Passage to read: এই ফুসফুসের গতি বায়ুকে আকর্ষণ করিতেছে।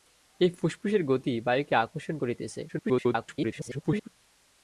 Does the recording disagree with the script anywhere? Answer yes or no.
yes